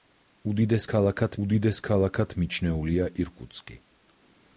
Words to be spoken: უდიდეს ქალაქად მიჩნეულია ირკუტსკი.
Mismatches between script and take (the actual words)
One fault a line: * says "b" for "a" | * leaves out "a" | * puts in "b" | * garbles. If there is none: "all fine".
* puts in "უდიდეს ქალაქად"